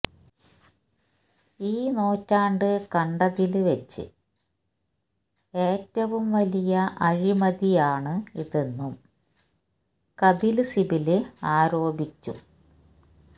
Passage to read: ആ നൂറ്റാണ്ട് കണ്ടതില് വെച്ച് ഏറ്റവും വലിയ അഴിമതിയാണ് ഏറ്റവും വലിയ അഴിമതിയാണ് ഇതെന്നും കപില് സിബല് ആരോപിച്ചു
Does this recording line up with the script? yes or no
no